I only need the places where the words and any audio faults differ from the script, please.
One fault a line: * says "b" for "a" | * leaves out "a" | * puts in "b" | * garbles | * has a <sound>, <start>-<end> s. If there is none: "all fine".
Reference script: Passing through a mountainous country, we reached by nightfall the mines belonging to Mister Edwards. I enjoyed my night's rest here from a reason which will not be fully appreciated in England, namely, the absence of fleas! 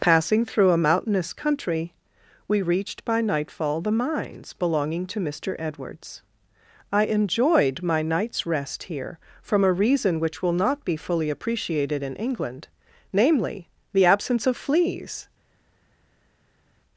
all fine